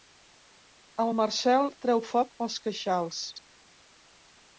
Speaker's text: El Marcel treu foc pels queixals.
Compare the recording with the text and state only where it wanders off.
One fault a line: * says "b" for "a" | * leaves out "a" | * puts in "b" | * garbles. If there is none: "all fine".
all fine